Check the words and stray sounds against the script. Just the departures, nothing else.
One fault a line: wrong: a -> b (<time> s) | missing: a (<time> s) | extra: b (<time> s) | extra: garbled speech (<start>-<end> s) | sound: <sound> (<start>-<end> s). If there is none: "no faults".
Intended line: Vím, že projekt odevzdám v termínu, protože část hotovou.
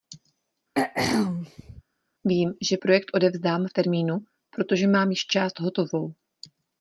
sound: throat clearing (0.8-1.8 s)
extra: mám již (4.9 s)